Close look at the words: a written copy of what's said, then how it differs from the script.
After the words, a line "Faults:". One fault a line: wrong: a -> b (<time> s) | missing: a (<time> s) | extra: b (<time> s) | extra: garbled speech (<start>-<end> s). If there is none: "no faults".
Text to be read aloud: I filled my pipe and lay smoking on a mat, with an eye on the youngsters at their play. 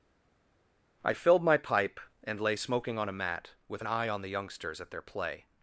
I filled my pipe and lay smoking on a mat, with an eye on the youngsters at their play.
Faults:
no faults